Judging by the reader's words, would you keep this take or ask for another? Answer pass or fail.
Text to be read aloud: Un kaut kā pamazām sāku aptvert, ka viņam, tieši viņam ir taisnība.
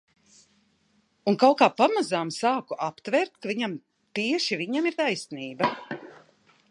pass